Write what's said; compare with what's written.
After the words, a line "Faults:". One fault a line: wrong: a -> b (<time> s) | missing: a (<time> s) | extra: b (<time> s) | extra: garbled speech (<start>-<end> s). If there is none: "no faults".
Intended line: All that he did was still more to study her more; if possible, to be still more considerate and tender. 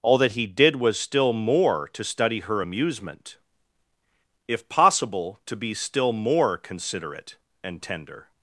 All that he did was still more to study her amusement; if possible, to be still more considerate and tender.
Faults:
wrong: more -> amusement (2.6 s)